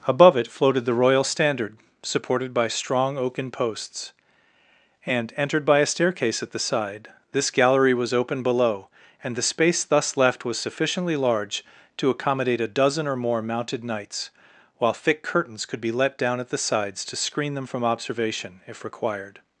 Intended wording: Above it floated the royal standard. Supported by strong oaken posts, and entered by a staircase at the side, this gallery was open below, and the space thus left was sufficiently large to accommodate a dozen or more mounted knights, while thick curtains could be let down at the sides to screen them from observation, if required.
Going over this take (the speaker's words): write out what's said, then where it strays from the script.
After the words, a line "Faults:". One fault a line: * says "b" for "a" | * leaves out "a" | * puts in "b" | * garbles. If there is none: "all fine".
Above it floated the royal standard. Supported by strong oaken posts, and entered by a staircase at the side, this gallery was open below, and the space thus left was sufficiently large to accommodate a dozen or more mounted knights, while thick curtains could be let down at the sides to screen them from observation, if required.
Faults:
all fine